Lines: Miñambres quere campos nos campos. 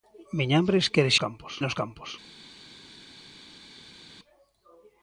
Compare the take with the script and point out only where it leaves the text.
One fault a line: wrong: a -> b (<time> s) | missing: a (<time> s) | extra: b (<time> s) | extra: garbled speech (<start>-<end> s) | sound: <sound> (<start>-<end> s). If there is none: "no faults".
no faults